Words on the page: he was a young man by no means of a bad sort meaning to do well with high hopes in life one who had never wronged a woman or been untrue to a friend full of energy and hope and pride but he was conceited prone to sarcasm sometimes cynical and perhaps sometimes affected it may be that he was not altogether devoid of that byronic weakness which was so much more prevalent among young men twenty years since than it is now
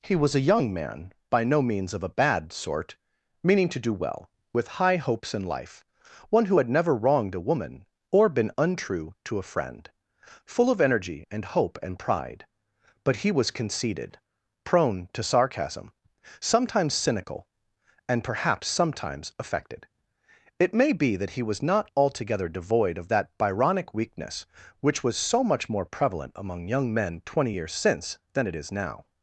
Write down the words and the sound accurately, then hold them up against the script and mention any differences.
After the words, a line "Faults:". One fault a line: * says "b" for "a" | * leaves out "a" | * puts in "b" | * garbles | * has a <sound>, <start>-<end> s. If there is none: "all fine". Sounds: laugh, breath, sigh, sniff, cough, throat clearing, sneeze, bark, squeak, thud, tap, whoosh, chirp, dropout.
he was a young man by no means of a bad sort meaning to do well with high hopes in life one who had never wronged a woman or been untrue to a friend full of energy and hope and pride but he was conceited prone to sarcasm sometimes cynical and perhaps sometimes affected it may be that he was not altogether devoid of that byronic weakness which was so much more prevalent among young men twenty years since than it is now
Faults:
all fine